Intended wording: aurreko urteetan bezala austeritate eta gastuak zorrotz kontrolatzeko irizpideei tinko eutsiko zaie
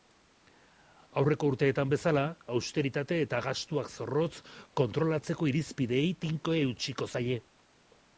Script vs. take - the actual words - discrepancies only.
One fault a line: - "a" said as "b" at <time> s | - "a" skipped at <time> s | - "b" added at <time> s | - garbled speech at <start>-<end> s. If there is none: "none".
none